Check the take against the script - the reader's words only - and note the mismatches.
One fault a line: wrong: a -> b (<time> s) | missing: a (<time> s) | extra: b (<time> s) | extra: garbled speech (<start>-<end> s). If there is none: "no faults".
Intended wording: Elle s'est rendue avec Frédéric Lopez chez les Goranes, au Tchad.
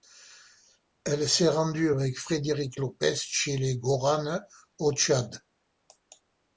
no faults